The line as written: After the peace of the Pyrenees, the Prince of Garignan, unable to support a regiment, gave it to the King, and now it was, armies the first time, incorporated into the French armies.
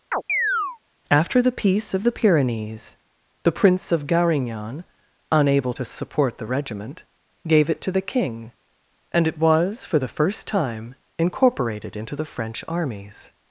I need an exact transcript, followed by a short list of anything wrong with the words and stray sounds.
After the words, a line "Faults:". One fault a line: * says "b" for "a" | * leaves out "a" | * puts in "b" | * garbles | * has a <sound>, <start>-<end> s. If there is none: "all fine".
After the peace of the Pyrenees, the Prince of Garignan, unable to support the regiment, gave it to the King, and it was, for the first time, incorporated into the French armies.
Faults:
* has a chirp, 0.1-0.8 s
* says "the" for "a"
* leaves out "now"
* says "for" for "armies"